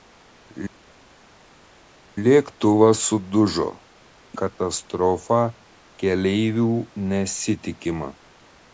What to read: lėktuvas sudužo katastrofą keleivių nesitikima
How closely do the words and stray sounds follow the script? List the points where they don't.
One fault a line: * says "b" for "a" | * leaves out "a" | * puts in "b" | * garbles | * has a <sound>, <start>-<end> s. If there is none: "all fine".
all fine